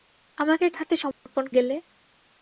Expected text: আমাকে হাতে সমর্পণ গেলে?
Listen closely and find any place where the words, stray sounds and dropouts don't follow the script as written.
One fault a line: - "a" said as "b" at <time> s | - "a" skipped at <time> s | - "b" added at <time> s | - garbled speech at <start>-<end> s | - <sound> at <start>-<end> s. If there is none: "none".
- dropout at 1.1-1.3 s